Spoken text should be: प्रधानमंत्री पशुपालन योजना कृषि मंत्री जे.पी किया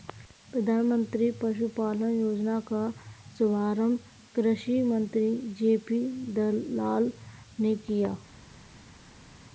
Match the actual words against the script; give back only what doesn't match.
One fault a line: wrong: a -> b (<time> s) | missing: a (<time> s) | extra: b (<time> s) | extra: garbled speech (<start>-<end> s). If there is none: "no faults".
extra: का शुभारंभ (2.7 s)
extra: दलाल ने (6.3 s)